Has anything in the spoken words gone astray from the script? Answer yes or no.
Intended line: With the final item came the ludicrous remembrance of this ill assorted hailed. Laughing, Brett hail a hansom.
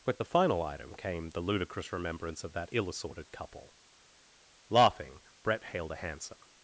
yes